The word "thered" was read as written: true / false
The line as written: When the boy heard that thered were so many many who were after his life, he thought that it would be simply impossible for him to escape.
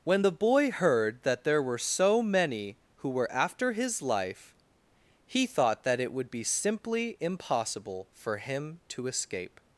false